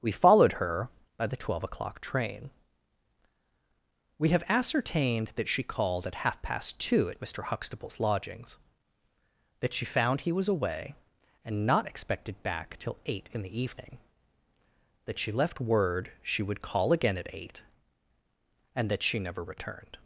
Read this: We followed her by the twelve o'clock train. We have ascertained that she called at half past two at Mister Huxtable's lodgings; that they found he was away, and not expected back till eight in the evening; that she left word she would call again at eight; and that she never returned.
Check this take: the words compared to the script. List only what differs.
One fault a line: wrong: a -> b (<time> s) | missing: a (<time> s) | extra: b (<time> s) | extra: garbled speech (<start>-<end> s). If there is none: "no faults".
wrong: they -> she (9.7 s)